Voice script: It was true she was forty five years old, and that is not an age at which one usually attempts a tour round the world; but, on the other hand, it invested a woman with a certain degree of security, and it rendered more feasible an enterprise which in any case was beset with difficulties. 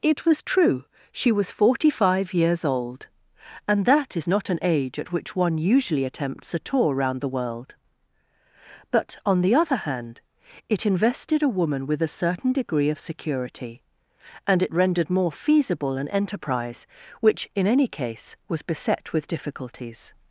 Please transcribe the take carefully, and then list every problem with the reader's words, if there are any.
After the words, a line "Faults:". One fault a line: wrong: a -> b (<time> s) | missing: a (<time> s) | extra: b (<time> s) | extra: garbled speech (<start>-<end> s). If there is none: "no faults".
It was true she was forty five years old, and that is not an age at which one usually attempts a tour round the world; but, on the other hand, it invested a woman with a certain degree of security, and it rendered more feasible an enterprise which in any case was beset with difficulties.
Faults:
no faults